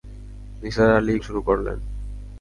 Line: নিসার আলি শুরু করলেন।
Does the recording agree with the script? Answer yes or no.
yes